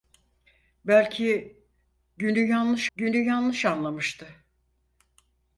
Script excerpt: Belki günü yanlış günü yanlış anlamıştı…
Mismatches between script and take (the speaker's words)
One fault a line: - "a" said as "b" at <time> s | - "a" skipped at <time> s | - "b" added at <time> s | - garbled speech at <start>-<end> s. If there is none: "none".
none